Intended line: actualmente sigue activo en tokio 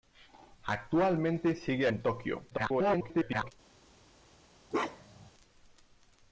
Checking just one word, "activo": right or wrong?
wrong